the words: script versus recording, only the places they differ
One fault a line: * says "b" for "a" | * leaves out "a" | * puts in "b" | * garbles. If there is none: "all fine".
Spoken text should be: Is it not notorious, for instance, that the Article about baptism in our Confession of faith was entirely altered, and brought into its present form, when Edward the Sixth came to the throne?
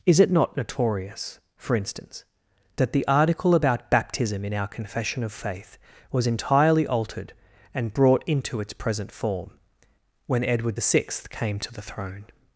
all fine